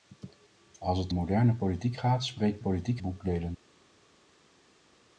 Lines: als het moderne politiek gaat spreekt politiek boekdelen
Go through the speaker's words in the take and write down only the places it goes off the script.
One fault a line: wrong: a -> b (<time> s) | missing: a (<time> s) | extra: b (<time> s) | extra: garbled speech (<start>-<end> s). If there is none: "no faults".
no faults